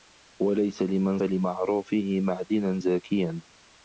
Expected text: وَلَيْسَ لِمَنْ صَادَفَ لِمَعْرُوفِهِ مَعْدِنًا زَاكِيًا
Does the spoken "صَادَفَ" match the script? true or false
false